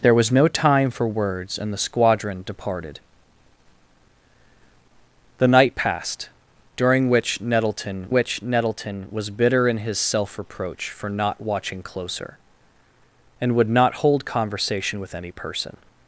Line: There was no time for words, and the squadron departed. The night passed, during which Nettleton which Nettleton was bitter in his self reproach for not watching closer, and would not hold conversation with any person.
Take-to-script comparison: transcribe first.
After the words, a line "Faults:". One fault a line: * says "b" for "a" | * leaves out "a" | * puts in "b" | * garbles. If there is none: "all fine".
There was no time for words, and the squadron departed. The night passed, during which Nettleton which Nettleton was bitter in his self reproach for not watching closer, and would not hold conversation with any person.
Faults:
all fine